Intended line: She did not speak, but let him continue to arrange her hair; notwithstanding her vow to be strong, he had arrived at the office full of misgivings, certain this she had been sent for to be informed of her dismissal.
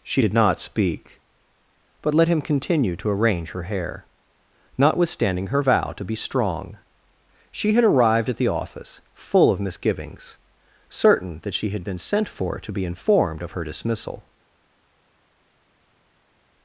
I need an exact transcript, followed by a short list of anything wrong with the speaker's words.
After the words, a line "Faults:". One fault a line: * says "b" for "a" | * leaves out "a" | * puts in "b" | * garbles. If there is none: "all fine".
She did not speak, but let him continue to arrange her hair; notwithstanding her vow to be strong, she had arrived at the office full of misgivings, certain that she had been sent for to be informed of her dismissal.
Faults:
* says "she" for "he"
* says "that" for "this"